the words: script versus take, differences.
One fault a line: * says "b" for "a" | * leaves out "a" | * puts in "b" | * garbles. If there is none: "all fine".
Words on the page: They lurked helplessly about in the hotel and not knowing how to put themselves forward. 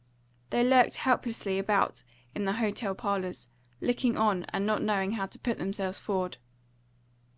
* puts in "parlours looking on"